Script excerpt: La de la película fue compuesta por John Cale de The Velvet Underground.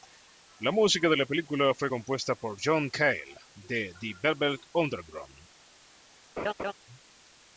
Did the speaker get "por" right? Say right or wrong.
right